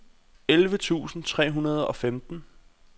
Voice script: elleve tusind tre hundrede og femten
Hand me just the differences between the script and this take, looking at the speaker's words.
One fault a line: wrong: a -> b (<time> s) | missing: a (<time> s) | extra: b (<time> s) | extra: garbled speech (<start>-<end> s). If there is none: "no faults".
no faults